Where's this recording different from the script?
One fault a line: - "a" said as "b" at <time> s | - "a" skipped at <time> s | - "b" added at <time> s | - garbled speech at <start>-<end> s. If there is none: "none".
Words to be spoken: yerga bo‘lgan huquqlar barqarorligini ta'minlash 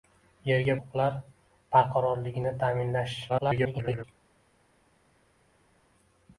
- "bo‘lgan" skipped at 0.8 s
- garbled speech at 3.3-4.0 s